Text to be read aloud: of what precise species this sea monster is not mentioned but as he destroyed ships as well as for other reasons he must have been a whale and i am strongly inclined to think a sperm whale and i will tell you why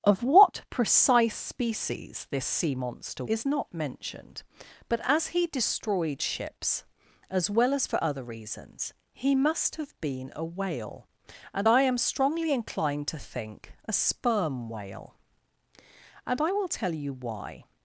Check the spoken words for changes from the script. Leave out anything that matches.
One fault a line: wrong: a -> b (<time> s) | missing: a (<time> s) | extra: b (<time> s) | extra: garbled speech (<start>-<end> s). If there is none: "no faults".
no faults